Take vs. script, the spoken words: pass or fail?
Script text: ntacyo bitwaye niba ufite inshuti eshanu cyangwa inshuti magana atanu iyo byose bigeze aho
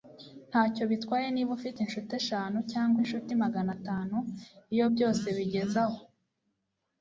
pass